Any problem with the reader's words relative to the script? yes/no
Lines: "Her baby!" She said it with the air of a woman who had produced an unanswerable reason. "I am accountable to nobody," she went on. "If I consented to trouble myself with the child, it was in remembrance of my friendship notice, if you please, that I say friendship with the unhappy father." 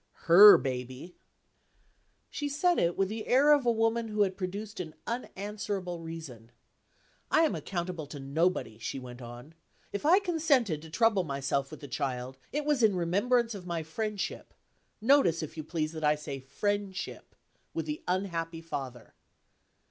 no